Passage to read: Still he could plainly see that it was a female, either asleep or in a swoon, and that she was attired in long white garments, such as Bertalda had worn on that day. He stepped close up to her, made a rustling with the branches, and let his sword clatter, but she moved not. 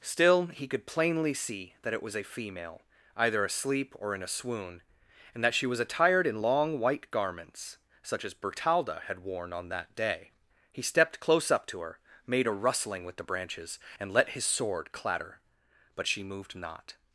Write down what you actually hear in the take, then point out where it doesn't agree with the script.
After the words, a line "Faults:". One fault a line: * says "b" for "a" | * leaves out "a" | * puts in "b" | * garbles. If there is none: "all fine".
Still he could plainly see that it was a female, either asleep or in a swoon, and that she was attired in long white garments, such as Bertalda had worn on that day. He stepped close up to her, made a rustling with the branches, and let his sword clatter, but she moved not.
Faults:
all fine